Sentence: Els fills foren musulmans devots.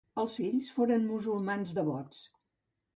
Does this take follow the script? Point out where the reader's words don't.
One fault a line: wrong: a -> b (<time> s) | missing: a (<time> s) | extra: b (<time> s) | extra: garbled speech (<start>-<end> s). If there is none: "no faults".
no faults